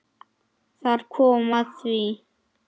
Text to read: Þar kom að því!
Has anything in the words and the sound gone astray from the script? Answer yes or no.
no